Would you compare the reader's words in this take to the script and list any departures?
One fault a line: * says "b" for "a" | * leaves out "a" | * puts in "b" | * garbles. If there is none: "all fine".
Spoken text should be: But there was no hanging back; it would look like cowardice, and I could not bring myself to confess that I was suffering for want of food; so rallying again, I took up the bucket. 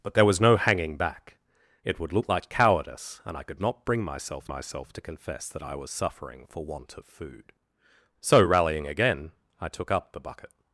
* puts in "myself"